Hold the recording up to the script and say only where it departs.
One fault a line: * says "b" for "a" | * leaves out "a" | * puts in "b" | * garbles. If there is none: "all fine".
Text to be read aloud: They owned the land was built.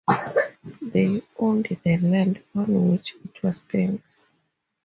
* puts in "on which it"